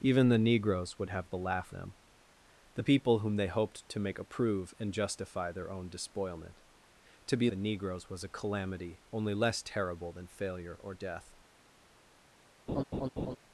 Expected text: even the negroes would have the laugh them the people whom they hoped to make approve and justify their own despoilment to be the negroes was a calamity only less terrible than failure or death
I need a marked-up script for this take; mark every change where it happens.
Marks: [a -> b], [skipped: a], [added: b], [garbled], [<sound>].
even the negroes would have the laugh them the people whom they hoped to make approve and justify their own despoilment to be the negroes was a calamity only less terrible than failure or death [laugh]